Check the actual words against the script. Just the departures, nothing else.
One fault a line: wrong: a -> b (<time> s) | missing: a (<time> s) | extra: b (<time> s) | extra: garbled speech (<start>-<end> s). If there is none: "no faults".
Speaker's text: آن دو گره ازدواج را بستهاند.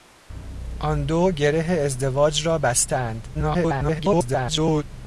extra: garbled speech (3.3-4.8 s)